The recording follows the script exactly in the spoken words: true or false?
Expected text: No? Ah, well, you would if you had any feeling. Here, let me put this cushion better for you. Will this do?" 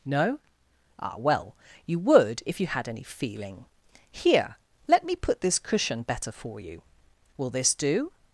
true